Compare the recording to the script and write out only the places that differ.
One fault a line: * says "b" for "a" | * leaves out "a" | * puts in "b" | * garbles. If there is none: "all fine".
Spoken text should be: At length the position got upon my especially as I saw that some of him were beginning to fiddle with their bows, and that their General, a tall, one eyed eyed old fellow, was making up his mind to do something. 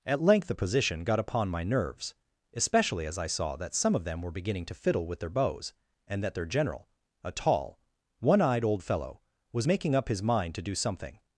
* puts in "nerves"
* says "them" for "him"
* leaves out "eyed"